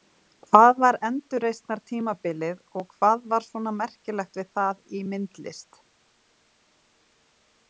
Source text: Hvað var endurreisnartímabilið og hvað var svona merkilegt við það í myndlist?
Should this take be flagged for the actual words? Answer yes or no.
no